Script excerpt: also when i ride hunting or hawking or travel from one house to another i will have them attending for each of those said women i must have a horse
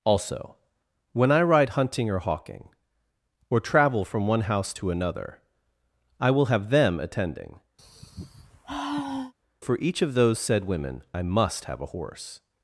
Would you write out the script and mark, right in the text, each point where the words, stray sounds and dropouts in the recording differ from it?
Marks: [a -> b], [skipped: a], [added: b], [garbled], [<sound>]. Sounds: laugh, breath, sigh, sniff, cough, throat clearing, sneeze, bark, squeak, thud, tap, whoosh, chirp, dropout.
also when i ride hunting or hawking or travel from one house to another i will have them attending [sigh] for each of those said women i must have a horse